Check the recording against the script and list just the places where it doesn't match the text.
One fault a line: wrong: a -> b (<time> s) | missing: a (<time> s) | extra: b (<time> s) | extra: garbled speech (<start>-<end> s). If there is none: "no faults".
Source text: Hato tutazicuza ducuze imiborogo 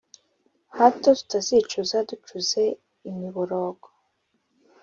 no faults